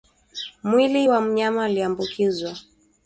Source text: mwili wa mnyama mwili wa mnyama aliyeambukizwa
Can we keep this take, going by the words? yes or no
no